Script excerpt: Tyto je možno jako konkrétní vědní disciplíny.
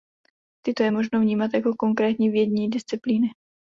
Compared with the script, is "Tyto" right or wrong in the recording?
right